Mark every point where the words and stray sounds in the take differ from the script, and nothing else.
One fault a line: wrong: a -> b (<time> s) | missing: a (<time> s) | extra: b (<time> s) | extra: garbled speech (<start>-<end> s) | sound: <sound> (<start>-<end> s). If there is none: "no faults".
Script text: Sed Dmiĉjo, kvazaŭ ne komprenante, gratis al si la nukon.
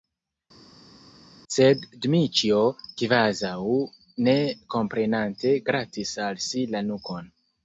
no faults